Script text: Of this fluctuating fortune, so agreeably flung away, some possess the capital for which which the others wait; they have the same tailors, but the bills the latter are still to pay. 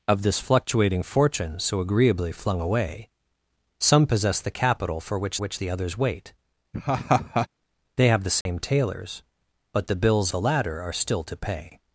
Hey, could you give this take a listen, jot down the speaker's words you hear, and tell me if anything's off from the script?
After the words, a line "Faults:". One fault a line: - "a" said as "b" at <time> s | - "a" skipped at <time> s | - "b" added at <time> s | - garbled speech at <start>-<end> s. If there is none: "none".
Of this fluctuating fortune, so agreeably flung away, some possess the capital for which which the others wait; they have the same tailors, but the bills the latter are still to pay.
Faults:
none